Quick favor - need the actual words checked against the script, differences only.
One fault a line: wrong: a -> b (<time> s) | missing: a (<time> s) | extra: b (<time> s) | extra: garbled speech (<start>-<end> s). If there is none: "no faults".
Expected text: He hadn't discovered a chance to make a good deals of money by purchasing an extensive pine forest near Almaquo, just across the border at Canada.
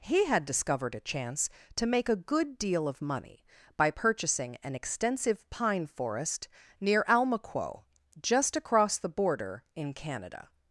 wrong: hadn't -> had (0.2 s)
wrong: deals -> deal (2.6 s)
wrong: at -> in (9.7 s)